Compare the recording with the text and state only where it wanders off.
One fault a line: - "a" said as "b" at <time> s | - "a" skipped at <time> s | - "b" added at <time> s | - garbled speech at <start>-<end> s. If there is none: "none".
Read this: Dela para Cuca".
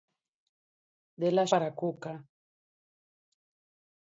none